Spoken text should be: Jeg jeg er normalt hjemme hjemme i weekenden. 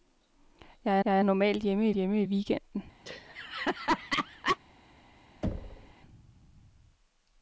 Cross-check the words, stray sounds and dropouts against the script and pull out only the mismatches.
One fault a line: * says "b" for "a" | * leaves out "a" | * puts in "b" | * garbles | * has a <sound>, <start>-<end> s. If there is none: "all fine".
* has a laugh, 3.1-4.6 s
* has a thud, 5.4-5.9 s